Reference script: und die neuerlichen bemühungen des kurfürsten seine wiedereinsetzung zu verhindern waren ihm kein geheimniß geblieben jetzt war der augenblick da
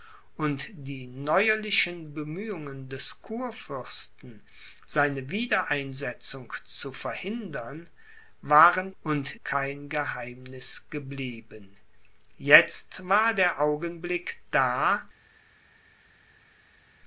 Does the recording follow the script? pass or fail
fail